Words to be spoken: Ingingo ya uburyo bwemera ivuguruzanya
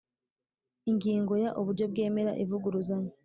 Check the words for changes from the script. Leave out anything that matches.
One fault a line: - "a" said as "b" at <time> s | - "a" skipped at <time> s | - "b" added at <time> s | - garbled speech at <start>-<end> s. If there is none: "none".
none